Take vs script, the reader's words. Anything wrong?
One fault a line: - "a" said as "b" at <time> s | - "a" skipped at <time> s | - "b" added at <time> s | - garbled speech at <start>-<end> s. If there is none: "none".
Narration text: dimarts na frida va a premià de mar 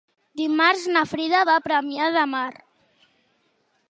none